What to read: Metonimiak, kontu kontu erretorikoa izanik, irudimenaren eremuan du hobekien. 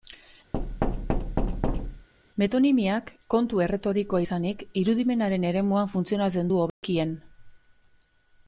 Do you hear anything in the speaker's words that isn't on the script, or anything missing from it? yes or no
yes